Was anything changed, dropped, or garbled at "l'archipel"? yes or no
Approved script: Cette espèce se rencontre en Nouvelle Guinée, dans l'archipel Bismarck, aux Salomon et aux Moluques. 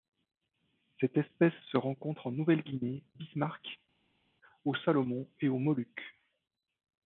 yes